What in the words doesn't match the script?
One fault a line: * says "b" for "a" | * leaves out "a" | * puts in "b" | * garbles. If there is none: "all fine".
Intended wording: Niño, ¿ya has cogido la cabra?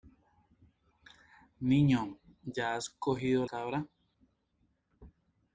* leaves out "la"